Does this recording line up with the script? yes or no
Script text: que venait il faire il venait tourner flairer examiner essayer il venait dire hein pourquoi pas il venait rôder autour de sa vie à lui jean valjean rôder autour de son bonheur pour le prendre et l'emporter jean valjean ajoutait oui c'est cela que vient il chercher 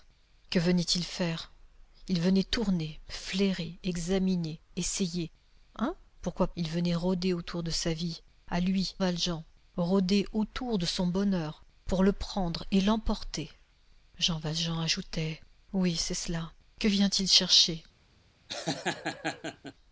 no